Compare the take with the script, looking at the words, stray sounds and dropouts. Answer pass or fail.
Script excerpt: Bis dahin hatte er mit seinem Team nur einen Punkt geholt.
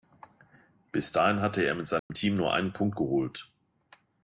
fail